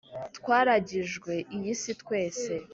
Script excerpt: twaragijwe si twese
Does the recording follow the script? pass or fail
fail